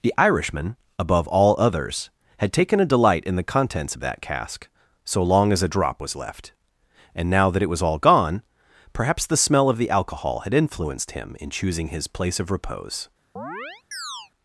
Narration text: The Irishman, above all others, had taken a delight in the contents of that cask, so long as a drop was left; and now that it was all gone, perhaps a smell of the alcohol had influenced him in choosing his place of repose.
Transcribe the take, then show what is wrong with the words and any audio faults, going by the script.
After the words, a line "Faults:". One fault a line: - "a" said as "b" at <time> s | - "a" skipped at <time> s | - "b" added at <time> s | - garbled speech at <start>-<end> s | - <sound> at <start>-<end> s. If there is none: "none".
The Irishman, above all others, had taken a delight in the contents of that cask, so long as a drop was left; and now that it was all gone, perhaps the smell of the alcohol had influenced him in choosing his place of repose.
Faults:
- "a" said as "the" at 9.2 s
- chirp at 13.4-14.3 s